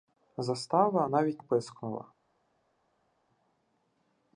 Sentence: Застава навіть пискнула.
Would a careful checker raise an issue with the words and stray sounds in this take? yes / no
no